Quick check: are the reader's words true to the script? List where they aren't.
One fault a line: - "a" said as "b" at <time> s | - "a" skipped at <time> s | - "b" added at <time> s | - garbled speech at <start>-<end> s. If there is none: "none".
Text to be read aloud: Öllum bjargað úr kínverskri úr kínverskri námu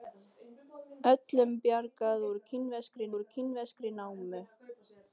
none